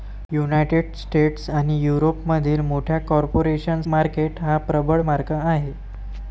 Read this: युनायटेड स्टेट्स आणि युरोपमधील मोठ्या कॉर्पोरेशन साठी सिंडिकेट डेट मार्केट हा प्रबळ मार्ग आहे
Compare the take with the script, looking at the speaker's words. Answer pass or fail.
fail